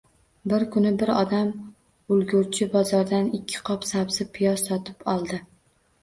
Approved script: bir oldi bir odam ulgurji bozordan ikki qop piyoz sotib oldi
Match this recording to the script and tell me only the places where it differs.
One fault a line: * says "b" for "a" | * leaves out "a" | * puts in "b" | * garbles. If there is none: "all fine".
* says "kuni" for "oldi"
* puts in "sabzi"